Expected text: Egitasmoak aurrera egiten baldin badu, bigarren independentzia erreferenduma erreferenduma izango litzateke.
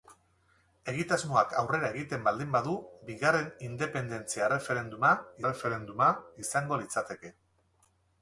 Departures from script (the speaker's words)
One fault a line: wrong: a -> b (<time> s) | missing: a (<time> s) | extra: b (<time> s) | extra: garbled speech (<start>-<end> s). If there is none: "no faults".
no faults